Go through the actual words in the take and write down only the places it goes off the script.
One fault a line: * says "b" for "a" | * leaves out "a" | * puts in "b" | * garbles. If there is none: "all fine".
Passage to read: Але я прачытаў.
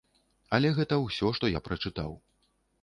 * puts in "гэта ўсё што"